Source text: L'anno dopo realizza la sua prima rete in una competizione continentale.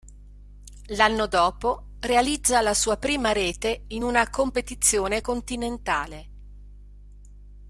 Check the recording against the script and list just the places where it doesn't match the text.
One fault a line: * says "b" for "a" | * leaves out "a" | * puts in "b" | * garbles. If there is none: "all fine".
all fine